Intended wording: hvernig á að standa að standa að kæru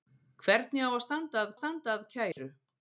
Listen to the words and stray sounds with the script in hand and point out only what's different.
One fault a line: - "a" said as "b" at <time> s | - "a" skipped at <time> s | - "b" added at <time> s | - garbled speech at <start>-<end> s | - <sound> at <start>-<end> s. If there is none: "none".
- dropout at 2.3-2.4 s